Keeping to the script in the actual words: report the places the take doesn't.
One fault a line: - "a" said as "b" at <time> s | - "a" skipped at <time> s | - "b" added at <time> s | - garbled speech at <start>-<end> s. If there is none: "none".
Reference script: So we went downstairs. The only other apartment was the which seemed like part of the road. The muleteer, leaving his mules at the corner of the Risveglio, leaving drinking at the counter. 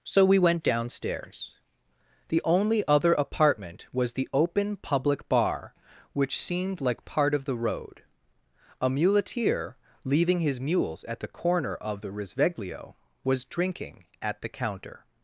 - "open public bar" added at 4.3 s
- "The" said as "A" at 8.8 s
- "leaving" said as "was" at 13.2 s